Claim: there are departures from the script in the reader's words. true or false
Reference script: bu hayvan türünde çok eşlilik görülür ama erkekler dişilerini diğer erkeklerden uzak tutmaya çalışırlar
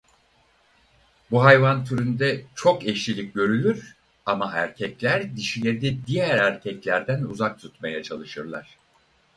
false